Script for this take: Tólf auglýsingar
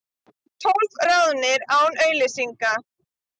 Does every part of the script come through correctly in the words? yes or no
no